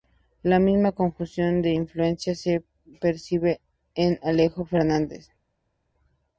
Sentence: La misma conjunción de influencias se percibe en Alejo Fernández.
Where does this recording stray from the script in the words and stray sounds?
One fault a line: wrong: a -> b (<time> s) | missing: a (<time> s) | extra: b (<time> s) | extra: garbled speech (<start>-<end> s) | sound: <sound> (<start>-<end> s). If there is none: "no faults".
no faults